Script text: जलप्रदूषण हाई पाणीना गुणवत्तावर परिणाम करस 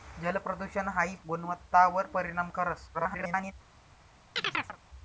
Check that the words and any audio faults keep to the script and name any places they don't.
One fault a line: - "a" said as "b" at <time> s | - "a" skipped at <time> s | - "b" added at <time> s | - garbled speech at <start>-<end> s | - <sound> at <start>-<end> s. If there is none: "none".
- "पाणीना" skipped at 1.1 s
- garbled speech at 2.9-3.5 s
- chirp at 4.4-4.8 s